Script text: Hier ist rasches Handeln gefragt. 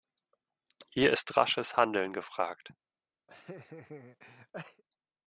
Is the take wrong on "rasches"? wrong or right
right